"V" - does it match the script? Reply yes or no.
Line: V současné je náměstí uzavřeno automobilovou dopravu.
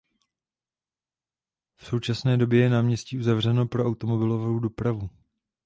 yes